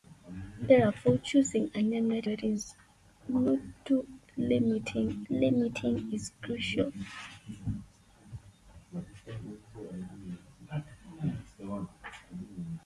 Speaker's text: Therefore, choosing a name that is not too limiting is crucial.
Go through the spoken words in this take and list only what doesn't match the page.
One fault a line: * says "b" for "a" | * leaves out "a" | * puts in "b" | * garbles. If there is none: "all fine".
* puts in "that"
* puts in "limiting"